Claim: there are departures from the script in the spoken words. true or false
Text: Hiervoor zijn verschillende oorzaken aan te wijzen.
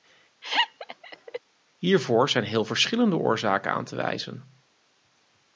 true